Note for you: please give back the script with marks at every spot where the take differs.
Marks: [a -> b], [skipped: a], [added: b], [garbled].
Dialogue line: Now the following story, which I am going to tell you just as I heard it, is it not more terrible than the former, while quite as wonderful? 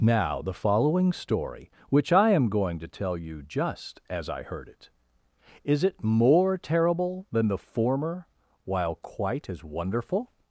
Now the following story, which I am going to tell you just as I heard it, is it [skipped: not] more terrible than the former, while quite as wonderful?